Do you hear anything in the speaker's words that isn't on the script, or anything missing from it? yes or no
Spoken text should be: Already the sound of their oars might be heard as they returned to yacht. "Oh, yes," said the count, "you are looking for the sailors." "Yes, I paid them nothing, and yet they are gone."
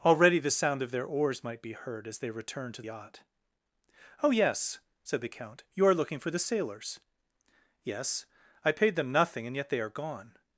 no